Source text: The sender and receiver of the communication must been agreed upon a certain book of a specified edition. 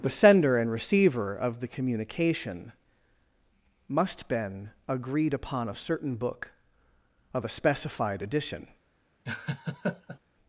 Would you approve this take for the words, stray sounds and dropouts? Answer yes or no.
no